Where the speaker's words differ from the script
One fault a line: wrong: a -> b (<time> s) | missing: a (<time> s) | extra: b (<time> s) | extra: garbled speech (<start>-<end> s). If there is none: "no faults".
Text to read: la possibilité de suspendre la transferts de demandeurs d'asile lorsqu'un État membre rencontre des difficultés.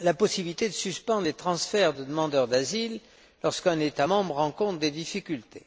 wrong: la -> les (1.2 s)